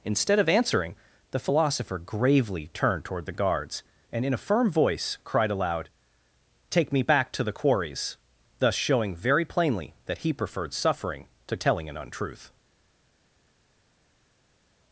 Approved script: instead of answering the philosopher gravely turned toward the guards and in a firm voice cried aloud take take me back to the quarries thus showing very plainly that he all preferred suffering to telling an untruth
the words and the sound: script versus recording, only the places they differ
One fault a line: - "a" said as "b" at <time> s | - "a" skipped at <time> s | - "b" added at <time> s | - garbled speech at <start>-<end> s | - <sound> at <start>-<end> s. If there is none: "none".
- "take" skipped at 6.9 s
- "all" skipped at 10.3 s